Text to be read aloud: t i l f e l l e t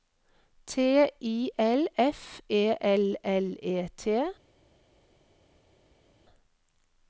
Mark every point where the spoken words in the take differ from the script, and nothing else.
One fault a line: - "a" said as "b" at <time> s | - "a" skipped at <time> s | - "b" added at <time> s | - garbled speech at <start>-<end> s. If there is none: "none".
none